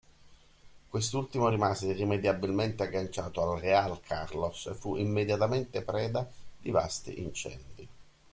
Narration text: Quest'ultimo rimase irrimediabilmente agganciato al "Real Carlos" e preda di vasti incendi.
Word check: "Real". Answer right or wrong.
right